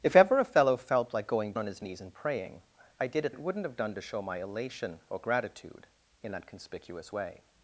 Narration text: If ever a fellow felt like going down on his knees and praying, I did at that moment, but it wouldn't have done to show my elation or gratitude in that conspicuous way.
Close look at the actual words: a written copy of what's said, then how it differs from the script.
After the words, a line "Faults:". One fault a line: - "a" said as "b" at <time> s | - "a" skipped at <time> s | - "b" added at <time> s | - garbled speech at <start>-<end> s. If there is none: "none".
If ever a fellow felt like going on his knees and praying, I did at it wouldn't have done to show my elation or gratitude in that conspicuous way.
Faults:
- "down" skipped at 1.5 s
- "that moment but" skipped at 3.3 s